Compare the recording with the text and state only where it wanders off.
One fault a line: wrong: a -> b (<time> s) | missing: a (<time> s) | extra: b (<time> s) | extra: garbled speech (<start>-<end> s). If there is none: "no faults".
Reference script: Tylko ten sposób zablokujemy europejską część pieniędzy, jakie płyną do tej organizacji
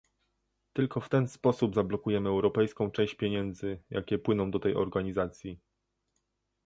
extra: w (1.0 s)